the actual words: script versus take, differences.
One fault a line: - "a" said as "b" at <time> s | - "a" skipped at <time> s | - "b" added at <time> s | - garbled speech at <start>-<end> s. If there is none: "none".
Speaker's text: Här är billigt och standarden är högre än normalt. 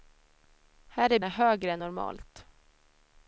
- "billigt och standarden" skipped at 1.2 s